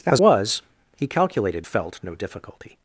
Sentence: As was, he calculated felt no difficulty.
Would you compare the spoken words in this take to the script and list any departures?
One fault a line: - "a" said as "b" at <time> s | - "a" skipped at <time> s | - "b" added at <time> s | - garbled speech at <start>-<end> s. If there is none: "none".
none